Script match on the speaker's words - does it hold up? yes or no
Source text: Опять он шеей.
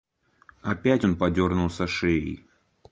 no